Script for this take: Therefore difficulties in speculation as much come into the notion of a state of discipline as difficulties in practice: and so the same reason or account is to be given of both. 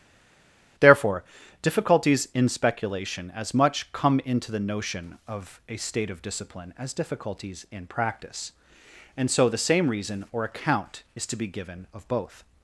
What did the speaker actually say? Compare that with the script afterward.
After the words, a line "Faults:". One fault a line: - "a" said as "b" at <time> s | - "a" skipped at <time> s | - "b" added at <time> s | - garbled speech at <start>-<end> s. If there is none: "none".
Therefore difficulties in speculation as much come into the notion of a state of discipline as difficulties in practice: and so the same reason or account is to be given of both.
Faults:
none